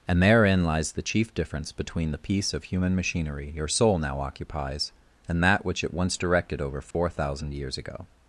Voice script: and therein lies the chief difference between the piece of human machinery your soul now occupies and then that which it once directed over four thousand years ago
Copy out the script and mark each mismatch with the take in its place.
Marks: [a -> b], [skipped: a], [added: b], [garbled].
and therein lies the chief difference between the piece of human machinery your soul now occupies and [skipped: then] that which it once directed over four thousand years ago